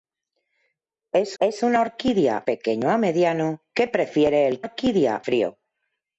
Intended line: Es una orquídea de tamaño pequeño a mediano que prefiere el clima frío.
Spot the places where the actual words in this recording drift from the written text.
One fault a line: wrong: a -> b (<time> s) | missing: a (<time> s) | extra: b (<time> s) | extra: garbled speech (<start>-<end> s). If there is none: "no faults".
extra: es (1.4 s)
missing: de tamaño (2.4 s)
wrong: clima -> orquídea (4.6 s)